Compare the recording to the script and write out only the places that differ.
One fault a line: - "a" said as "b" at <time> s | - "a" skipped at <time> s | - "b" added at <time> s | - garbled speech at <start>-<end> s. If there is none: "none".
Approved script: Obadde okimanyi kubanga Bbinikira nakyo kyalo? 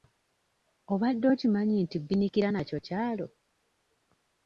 - "kubanga" said as "nti" at 1.8 s